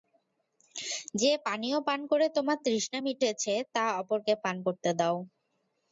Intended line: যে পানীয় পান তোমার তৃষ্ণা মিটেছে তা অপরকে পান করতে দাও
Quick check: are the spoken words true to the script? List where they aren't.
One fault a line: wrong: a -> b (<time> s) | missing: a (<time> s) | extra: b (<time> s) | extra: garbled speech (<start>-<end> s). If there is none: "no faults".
extra: করে (2.1 s)